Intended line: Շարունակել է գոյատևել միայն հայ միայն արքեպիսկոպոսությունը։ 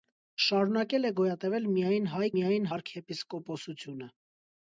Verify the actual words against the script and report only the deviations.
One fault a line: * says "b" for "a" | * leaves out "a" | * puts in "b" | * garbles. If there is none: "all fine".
all fine